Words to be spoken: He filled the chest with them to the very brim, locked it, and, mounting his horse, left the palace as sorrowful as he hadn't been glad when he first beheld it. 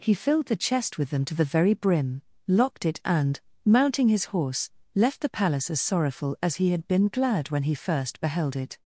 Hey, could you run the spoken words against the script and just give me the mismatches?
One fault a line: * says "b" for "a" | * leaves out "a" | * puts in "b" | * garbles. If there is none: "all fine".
* says "had" for "hadn't"